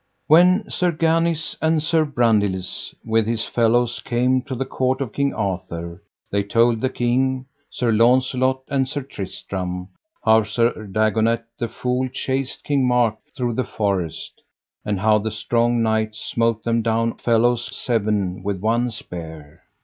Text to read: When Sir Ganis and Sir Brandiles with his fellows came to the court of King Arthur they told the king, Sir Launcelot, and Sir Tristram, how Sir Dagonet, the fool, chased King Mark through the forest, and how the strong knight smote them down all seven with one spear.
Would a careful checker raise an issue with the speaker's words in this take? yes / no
yes